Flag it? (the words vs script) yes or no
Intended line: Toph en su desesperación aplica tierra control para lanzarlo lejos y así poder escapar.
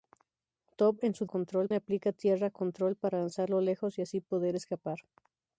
yes